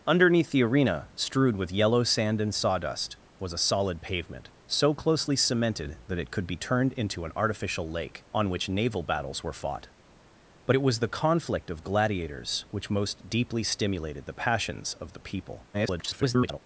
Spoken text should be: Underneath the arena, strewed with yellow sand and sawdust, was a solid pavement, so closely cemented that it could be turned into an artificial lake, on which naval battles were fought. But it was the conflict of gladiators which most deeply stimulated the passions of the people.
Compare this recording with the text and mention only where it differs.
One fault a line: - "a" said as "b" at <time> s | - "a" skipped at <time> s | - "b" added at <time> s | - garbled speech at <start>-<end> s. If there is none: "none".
- garbled speech at 15.7-16.6 s